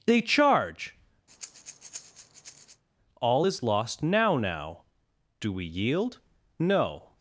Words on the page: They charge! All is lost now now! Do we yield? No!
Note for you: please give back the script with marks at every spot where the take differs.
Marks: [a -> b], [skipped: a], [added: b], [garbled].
They charge! All is lost now now! Do we yield? No!